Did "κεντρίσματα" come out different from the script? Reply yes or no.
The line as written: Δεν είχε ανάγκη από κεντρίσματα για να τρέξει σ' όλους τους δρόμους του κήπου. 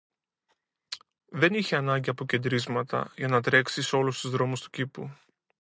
no